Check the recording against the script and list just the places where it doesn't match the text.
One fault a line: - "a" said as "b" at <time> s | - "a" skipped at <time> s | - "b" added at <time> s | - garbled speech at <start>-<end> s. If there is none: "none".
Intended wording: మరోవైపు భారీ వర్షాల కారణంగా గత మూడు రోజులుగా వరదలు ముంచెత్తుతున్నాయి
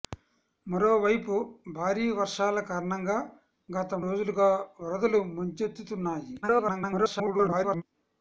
- "మూడు" skipped at 3.9 s
- garbled speech at 6.4-7.8 s